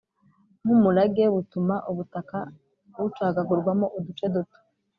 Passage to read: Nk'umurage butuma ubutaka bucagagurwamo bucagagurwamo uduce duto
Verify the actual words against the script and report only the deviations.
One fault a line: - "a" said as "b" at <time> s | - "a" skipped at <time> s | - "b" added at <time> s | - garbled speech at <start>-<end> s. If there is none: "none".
- "bucagagurwamo" skipped at 3.9 s